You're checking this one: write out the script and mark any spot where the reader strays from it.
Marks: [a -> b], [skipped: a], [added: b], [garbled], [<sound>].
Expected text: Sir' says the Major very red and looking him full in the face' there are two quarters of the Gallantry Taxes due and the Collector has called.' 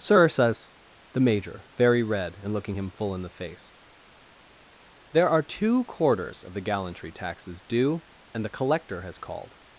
Sir' says the Major very red and looking him full in the face' there are two quarters of the Gallantry Taxes due and the Collector has called.'